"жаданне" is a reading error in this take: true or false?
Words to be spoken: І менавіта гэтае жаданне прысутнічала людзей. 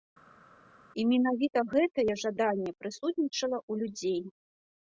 false